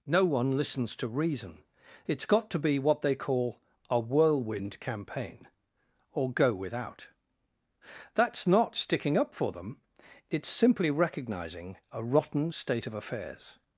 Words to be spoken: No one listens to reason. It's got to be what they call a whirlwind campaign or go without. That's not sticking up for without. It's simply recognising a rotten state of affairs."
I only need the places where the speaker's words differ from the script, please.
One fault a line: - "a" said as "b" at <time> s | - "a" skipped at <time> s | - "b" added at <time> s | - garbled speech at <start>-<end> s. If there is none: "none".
- "without" said as "them" at 9.5 s